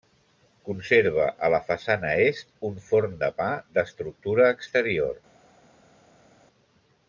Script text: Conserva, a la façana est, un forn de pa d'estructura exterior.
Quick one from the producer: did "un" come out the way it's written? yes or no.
yes